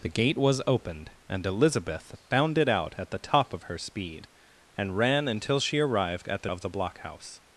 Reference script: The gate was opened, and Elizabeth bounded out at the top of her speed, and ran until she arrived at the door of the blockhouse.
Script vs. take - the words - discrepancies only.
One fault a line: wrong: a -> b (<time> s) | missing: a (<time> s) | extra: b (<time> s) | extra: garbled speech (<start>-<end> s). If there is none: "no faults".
missing: door (6.5 s)